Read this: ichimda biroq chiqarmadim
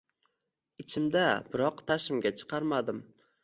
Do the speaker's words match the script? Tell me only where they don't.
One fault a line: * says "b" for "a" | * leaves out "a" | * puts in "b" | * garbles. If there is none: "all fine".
* puts in "tashimga"